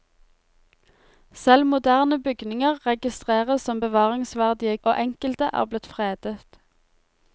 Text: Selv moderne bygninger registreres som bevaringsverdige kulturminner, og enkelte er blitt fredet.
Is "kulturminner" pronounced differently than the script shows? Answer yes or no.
yes